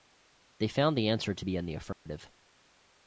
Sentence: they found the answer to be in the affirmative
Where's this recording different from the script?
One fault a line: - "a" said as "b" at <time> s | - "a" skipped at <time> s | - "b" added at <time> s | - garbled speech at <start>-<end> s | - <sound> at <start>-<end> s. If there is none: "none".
- dropout at 1.9-2.1 s